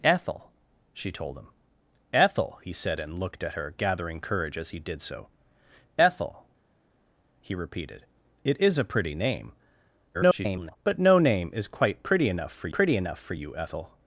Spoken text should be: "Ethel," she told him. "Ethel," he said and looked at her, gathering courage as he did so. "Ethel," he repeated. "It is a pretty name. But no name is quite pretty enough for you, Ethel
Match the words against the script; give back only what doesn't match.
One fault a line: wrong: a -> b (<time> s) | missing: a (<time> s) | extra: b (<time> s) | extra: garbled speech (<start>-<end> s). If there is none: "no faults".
extra: garbled speech (10.1-10.8 s)
extra: pretty enough for (12.7 s)